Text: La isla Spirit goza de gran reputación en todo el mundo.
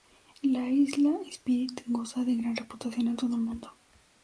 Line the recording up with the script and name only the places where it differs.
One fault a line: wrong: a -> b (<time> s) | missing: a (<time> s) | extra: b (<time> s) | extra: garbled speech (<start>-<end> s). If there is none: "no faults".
no faults